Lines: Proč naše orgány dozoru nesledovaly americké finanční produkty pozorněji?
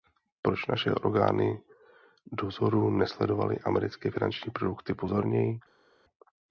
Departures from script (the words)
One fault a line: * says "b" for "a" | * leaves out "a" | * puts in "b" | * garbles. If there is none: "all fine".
all fine